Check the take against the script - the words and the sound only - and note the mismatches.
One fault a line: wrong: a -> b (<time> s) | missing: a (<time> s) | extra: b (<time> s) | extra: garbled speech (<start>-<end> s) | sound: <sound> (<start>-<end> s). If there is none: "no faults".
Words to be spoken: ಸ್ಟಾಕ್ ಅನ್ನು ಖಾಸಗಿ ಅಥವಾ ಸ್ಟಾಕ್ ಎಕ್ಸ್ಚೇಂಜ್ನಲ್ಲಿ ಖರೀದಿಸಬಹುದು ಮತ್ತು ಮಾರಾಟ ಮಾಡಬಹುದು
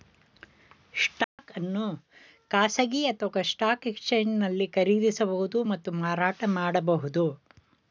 sound: dropout (1.2-1.4 s)